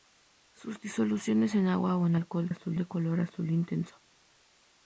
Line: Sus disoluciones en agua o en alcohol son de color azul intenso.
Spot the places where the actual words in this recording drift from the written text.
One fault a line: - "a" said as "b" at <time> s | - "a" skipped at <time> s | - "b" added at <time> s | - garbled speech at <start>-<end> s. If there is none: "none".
- "son" said as "azul" at 2.5 s